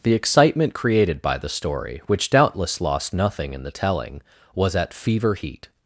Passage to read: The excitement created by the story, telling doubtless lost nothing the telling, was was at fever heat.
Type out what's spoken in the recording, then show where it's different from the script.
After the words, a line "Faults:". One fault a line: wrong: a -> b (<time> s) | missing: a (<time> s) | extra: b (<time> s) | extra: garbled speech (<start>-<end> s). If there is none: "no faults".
The excitement created by the story, which doubtless lost nothing in the telling, was at fever heat.
Faults:
wrong: telling -> which (2.1 s)
extra: in (3.5 s)
missing: was (4.7 s)